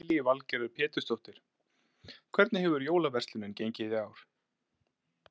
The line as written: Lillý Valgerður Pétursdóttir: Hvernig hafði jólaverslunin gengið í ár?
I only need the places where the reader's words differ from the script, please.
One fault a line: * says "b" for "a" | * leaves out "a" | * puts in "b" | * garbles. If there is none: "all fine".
* says "hefur" for "hafði"